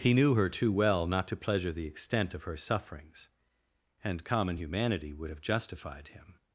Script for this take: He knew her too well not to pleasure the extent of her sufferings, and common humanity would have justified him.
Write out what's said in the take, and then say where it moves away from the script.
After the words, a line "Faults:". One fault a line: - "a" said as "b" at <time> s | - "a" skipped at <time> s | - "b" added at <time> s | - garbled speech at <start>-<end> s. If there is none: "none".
He knew her too well not to pleasure the extent of her sufferings, and common humanity would have justified him.
Faults:
none